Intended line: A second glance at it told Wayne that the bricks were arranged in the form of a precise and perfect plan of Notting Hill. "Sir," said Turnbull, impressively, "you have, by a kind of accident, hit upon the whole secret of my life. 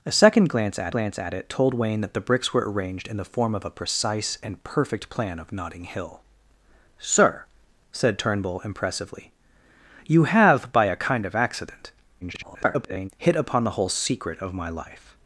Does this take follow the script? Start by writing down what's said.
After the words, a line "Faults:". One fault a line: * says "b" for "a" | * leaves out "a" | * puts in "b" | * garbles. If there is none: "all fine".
A second glance at glance at it told Wayne that the bricks were arranged in the form of a precise and perfect plan of Notting Hill. "Sir," said Turnbull, impressively, "you have, by a kind of accident, [garbled] hit upon the whole secret of my life.
Faults:
* puts in "glance at"
* garbles